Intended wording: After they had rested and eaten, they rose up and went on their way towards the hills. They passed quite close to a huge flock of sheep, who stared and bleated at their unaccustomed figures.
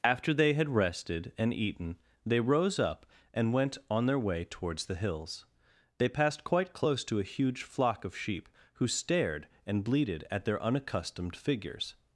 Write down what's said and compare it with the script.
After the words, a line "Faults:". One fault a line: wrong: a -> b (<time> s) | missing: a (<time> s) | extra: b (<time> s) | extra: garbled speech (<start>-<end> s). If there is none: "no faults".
After they had rested and eaten, they rose up and went on their way towards the hills. They passed quite close to a huge flock of sheep, who stared and bleated at their unaccustomed figures.
Faults:
no faults